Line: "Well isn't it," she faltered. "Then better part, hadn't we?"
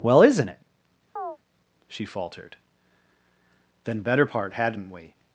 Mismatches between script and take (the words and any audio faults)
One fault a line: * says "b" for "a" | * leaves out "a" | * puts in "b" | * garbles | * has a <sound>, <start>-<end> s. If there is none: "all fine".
* has a chirp, 1.2-1.4 s